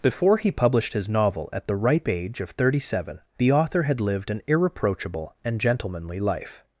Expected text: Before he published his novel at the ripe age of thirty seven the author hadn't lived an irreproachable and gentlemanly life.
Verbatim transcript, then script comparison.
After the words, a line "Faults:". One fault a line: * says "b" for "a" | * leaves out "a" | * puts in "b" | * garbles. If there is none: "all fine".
Before he published his novel at the ripe age of thirty seven the author had lived an irreproachable and gentlemanly life.
Faults:
* says "had" for "hadn't"